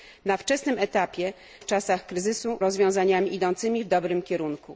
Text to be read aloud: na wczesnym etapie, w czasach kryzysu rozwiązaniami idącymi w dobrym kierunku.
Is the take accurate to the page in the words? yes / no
yes